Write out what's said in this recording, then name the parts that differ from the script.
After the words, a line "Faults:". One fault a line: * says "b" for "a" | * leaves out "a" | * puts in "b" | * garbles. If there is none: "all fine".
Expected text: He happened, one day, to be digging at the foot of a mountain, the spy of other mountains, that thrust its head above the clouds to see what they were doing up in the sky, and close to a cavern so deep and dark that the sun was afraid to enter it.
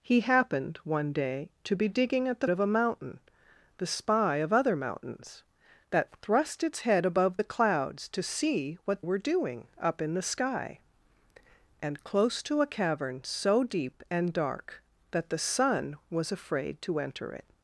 He happened, one day, to be digging at the of a mountain, the spy of other mountains, that thrust its head above the clouds to see what were doing up in the sky, and close to a cavern so deep and dark that the sun was afraid to enter it.
Faults:
* leaves out "foot"
* leaves out "they"